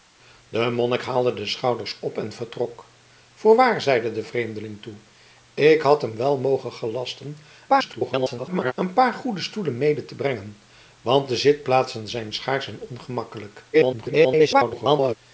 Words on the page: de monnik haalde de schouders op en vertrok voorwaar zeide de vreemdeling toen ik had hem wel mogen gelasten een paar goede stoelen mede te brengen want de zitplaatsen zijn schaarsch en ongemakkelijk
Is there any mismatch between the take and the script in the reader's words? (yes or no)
yes